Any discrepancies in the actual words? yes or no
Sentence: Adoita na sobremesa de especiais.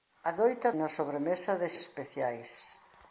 no